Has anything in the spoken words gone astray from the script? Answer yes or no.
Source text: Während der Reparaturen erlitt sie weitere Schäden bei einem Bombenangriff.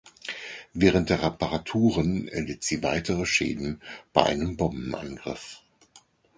no